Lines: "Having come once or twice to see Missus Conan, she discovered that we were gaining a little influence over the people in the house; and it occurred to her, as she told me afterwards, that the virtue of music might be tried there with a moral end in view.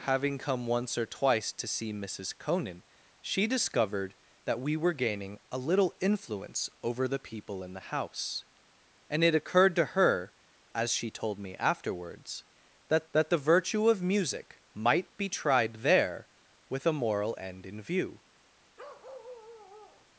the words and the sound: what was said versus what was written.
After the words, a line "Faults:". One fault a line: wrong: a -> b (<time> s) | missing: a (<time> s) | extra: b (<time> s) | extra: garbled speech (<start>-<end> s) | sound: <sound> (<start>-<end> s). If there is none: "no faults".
"Having come once or twice to see Missus Conan, she discovered that we were gaining a little influence over the people in the house; and it occurred to her, as she told me afterwards, that that the virtue of music might be tried there with a moral end in view.
Faults:
extra: that (13.1 s)
sound: bark (18.8-20.1 s)